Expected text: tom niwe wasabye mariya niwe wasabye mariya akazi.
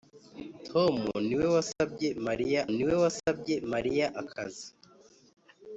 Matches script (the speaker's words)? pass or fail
pass